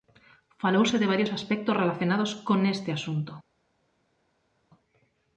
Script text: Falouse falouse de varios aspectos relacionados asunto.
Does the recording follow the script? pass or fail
fail